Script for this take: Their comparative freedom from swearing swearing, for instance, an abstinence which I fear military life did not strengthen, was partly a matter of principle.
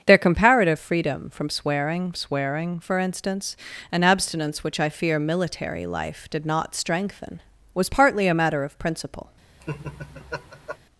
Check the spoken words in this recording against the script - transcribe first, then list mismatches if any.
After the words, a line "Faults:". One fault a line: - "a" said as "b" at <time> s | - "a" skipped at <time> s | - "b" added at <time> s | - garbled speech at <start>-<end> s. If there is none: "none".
Their comparative freedom from swearing swearing, for instance, an abstinence which I fear military life did not strengthen, was partly a matter of principle.
Faults:
none